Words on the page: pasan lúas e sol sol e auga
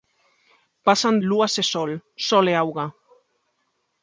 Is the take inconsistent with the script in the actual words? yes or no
no